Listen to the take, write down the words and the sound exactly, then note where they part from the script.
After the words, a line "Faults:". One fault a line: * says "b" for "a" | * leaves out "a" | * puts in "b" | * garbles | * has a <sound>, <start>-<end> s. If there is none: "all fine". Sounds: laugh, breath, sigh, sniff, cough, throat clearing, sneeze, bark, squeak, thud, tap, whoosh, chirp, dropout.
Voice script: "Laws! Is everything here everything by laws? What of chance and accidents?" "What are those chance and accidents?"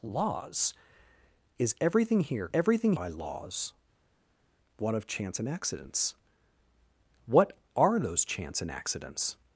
"Laws! Is everything here everything by laws? What of chance and accidents?" "What are those chance and accidents?"
Faults:
all fine